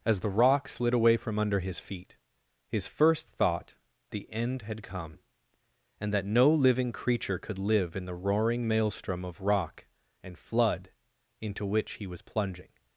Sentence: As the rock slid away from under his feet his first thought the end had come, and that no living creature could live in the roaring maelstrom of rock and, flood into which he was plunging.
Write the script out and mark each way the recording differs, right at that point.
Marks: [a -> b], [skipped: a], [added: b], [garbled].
As the rock slid away from under his feet his first thought the end had come, and that no living creature could live in the roaring maelstrom of rock and, flood into which he was plunging.